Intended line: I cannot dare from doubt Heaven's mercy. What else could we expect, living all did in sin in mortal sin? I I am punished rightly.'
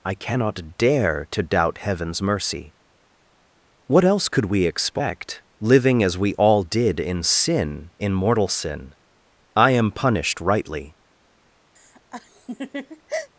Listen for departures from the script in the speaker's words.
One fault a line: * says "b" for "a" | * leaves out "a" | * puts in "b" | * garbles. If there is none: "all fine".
* says "to" for "from"
* puts in "as we"
* leaves out "I"